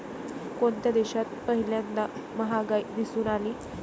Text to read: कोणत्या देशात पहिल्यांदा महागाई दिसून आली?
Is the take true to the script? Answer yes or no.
yes